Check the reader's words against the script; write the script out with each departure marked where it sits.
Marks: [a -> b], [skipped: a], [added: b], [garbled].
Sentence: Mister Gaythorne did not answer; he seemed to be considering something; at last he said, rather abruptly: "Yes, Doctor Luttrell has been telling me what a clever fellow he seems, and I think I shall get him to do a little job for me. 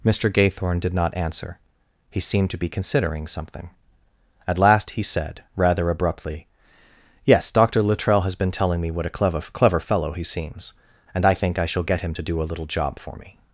Mister Gaythorne did not answer; he seemed to be considering something; at last he said, rather abruptly: "Yes, Doctor Luttrell has been telling me what a clever [added: clever] fellow he seems, and I think I shall get him to do a little job for me.